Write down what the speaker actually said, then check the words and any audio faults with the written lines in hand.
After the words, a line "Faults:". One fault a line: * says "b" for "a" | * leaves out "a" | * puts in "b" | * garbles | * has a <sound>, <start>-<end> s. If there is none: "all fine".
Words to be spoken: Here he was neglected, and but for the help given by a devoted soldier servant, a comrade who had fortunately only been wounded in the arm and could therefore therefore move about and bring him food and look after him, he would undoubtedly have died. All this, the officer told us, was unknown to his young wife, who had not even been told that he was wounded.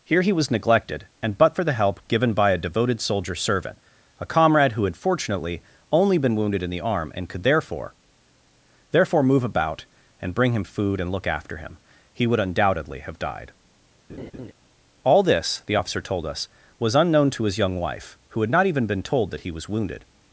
Here he was neglected, and but for the help given by a devoted soldier servant, a comrade who had fortunately only been wounded in the arm and could therefore therefore move about and bring him food and look after him, he would undoubtedly have died. All this, the officer told us, was unknown to his young wife, who had not even been told that he was wounded.
Faults:
* has a laugh, 14.1-14.5 s